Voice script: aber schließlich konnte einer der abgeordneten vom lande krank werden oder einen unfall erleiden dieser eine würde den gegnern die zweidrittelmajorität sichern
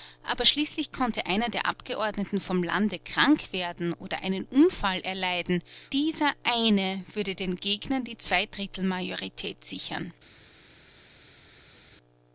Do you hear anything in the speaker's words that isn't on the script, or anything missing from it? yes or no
no